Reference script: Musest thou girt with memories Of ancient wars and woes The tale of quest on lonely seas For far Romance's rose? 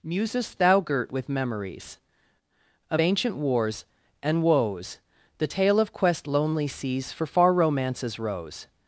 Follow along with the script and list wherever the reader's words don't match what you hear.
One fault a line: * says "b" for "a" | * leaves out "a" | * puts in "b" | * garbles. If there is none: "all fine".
* leaves out "on"